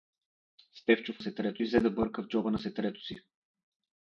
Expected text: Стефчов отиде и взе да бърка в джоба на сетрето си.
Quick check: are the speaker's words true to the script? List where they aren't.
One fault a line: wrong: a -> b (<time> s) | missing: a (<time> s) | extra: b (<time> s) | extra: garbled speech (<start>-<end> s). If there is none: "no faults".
wrong: отиде -> сетрето (1.2 s)